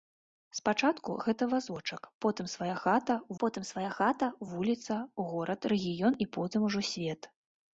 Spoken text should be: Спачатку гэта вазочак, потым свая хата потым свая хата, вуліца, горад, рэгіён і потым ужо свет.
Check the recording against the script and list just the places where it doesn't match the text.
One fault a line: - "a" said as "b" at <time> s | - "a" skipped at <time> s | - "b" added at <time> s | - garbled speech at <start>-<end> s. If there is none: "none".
none